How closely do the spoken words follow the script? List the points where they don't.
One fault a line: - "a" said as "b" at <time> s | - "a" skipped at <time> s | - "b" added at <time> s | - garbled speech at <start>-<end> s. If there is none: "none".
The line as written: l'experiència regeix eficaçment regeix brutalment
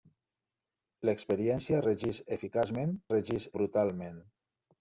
none